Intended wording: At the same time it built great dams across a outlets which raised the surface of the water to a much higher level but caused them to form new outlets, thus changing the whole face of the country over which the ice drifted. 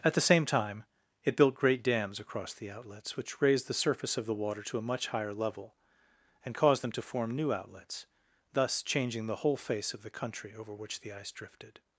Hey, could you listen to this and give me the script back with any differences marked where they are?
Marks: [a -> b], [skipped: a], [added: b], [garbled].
At the same time it built great dams across [a -> the] outlets which raised the surface of the water to a much higher level [but -> and] caused them to form new outlets, thus changing the whole face of the country over which the ice drifted.